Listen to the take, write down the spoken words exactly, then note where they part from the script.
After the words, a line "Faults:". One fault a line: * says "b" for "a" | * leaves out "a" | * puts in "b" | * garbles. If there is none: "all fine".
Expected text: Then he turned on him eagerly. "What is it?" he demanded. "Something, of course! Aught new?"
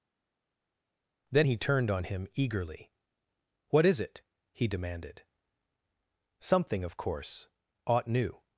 Then he turned on him eagerly. "What is it?" he demanded. "Something, of course! Aught new?"
Faults:
all fine